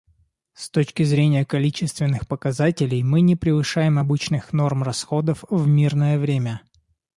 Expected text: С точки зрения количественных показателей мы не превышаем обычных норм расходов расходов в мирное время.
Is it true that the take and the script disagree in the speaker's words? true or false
true